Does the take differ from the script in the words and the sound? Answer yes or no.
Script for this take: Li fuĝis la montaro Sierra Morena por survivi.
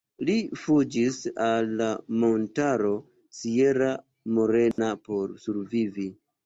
yes